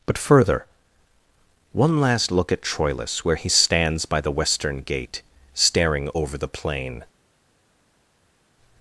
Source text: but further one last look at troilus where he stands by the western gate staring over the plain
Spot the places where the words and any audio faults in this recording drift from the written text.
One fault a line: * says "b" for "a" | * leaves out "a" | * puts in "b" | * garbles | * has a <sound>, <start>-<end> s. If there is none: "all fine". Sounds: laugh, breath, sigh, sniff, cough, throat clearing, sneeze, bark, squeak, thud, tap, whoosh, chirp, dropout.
all fine